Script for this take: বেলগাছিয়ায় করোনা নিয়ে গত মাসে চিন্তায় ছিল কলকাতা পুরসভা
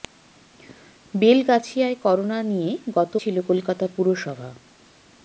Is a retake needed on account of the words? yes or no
yes